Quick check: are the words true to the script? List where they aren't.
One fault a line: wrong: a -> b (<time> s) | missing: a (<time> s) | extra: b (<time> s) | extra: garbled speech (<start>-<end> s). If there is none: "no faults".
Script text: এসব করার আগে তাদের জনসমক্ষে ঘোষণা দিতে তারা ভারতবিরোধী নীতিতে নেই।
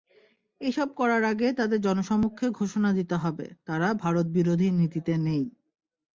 extra: হবে (3.1 s)